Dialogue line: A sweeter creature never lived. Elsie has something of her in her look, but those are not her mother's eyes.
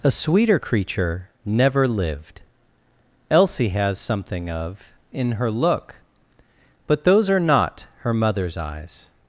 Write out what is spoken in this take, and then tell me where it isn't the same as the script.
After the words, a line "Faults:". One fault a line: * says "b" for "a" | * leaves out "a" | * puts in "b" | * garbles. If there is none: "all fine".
A sweeter creature never lived. Elsie has something of in her look, but those are not her mother's eyes.
Faults:
* leaves out "her"